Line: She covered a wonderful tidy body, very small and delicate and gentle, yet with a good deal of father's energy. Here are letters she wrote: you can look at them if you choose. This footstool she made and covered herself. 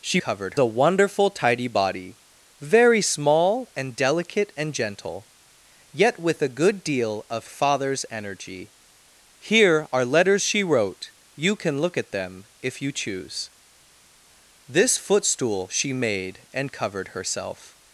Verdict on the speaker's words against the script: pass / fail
pass